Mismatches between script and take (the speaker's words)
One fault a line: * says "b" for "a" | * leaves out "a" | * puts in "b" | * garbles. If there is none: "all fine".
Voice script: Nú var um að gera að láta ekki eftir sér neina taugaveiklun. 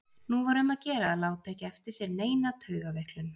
all fine